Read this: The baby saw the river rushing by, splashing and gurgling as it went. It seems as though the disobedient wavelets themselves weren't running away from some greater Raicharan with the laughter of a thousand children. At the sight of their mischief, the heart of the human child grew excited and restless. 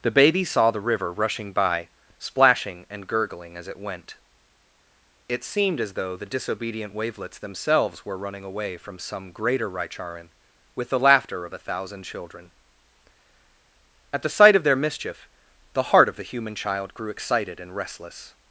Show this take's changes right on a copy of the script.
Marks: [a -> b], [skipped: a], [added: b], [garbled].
The baby saw the river rushing by, splashing and gurgling as it went. It [seems -> seemed] as though the disobedient wavelets themselves [weren't -> were] running away from some greater Raicharan with the laughter of a thousand children. At the sight of their mischief, the heart of the human child grew excited and restless.